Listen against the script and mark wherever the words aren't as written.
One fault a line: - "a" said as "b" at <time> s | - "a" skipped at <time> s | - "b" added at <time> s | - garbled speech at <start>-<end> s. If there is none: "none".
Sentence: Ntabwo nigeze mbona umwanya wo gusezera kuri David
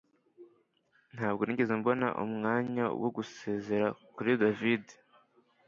none